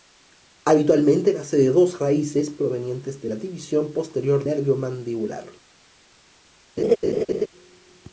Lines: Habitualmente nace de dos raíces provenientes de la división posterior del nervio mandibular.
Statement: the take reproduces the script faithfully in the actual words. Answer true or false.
false